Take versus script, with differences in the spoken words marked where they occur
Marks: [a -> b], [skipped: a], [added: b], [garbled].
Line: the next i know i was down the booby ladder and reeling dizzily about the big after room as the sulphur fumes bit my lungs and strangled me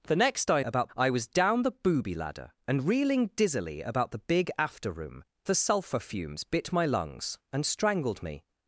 the next i [know -> about] i was down the booby ladder and reeling dizzily about the big after room [skipped: as] the sulphur fumes bit my lungs and strangled me